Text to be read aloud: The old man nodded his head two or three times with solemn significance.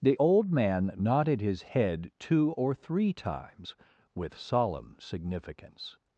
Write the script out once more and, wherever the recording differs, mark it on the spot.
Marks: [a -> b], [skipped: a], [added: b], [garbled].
The old man nodded his head two or three times with solemn significance.